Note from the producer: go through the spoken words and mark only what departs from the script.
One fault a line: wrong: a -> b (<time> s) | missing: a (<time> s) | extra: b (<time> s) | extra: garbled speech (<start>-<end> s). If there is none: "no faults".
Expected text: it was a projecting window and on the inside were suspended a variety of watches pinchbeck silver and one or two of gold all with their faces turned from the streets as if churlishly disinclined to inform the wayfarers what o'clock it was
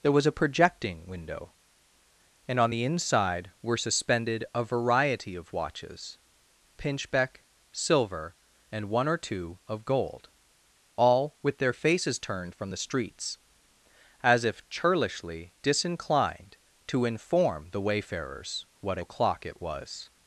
wrong: it -> there (0.0 s)